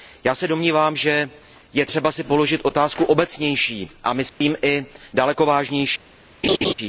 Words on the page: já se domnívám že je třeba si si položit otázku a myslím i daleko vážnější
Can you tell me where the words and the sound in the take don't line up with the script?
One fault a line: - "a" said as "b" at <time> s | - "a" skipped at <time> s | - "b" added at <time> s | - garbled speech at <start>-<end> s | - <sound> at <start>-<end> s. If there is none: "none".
- "si" skipped at 2.2 s
- "obecnější" added at 3.0 s
- dropout at 4.3-4.4 s
- laugh at 6.4-6.7 s